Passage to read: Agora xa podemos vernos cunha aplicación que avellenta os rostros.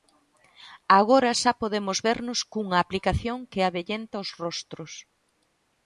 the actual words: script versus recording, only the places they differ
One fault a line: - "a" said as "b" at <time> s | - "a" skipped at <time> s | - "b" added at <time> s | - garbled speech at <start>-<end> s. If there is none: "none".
none